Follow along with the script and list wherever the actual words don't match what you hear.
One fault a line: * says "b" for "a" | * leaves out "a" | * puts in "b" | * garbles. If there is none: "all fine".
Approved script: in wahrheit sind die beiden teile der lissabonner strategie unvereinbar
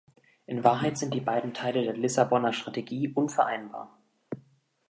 all fine